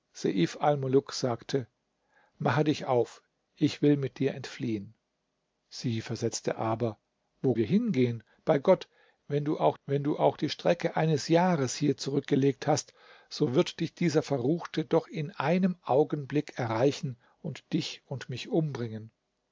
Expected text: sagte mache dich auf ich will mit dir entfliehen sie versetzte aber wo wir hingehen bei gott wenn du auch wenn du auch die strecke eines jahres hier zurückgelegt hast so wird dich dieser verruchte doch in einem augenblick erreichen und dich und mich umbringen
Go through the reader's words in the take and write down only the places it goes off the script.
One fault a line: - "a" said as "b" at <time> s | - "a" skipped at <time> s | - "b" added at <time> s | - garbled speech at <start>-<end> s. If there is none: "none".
none